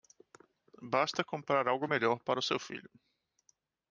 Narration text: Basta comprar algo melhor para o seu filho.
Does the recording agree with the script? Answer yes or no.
yes